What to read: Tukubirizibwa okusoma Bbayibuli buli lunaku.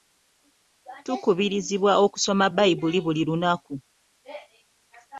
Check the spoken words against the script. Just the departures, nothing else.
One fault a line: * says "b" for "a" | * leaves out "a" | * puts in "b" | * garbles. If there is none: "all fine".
all fine